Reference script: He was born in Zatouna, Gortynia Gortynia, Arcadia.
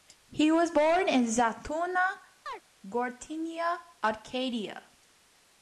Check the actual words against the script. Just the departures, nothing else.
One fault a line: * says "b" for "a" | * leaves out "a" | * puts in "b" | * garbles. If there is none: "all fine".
* leaves out "Gortynia"